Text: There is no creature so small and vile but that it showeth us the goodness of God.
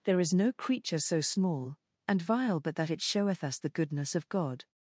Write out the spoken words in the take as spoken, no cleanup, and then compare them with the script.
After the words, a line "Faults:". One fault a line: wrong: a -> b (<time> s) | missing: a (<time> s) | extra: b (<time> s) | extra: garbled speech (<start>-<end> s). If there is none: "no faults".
There is no creature so small and vile but that it showeth us the goodness of God.
Faults:
no faults